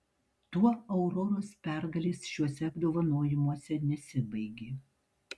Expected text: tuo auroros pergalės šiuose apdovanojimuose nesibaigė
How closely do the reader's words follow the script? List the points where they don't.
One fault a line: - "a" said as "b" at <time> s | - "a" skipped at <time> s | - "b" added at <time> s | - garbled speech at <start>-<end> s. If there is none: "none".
none